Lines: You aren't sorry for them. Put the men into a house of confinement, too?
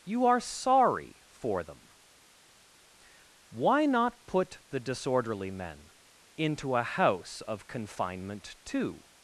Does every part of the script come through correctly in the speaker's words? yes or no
no